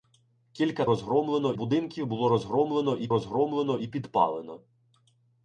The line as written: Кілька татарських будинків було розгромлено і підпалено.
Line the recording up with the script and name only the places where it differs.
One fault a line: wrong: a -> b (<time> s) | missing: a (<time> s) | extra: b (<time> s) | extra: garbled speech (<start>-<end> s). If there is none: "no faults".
wrong: татарських -> розгромлено (0.8 s)
extra: розгромлено і (3.1 s)